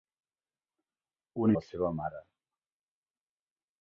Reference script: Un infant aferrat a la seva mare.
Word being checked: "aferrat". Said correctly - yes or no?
no